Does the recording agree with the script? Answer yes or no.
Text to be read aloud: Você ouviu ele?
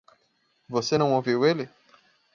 no